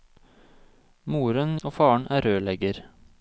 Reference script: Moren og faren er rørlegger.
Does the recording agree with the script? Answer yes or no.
yes